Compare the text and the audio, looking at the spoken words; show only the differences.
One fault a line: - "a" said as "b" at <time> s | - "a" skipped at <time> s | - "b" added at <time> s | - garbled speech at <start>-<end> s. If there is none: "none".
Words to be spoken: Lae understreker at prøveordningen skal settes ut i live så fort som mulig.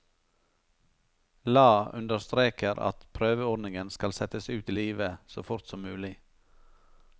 none